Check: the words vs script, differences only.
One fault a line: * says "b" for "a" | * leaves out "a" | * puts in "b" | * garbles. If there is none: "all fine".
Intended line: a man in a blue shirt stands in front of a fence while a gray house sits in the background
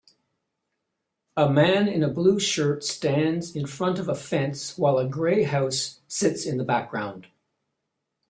all fine